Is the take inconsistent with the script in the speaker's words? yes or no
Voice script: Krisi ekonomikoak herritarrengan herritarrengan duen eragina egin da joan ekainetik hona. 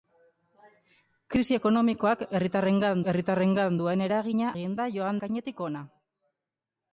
no